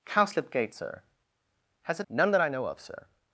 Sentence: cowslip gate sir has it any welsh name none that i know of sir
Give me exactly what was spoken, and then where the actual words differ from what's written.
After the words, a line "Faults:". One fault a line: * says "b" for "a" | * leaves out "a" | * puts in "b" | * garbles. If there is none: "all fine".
cowslip gate sir has it none that i know of sir
Faults:
* leaves out "any welsh name"